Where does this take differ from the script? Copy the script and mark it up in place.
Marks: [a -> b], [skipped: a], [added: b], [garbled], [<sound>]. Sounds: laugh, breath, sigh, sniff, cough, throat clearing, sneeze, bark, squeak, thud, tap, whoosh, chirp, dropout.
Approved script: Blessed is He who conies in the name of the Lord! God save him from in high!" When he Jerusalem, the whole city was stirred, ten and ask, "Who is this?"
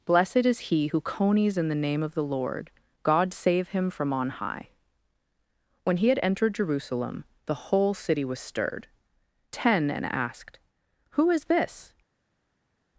Blessed is He who conies in the name of the Lord! God save him from [in -> on] high!" When he [added: had entered] Jerusalem, the whole city was stirred, ten and [ask, -> asked] "Who is this?"